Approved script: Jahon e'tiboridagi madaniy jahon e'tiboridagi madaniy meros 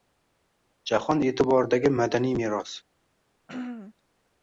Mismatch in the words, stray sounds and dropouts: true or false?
true